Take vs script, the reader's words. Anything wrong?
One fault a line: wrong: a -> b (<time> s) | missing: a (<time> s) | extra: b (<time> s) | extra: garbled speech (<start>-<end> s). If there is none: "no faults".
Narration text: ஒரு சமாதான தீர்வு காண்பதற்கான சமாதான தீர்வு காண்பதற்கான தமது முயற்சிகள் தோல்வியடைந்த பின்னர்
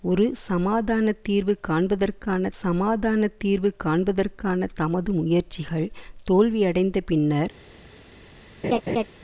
no faults